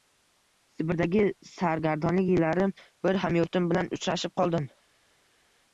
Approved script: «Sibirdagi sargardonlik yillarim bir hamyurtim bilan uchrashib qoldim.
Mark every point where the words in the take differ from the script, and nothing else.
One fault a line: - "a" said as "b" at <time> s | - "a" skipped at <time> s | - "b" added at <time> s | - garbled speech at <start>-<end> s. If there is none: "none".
none